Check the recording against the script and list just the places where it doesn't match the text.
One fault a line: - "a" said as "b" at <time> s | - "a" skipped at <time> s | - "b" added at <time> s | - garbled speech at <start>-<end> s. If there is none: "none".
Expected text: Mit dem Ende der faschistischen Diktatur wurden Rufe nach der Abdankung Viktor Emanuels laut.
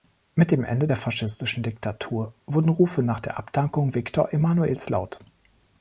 none